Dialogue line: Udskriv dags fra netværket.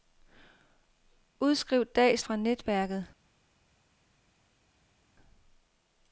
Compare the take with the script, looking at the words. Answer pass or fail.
pass